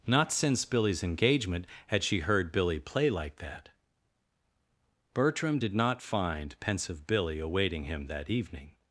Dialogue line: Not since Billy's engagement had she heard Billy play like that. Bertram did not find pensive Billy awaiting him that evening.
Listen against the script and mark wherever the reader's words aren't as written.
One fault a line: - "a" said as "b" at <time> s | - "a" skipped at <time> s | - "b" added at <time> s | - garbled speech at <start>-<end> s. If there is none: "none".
none